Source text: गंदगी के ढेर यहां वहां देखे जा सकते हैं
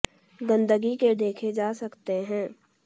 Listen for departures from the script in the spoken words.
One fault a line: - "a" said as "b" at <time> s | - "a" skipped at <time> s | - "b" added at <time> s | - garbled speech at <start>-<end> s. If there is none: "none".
- "ढेर यहां वहां" skipped at 1.1 s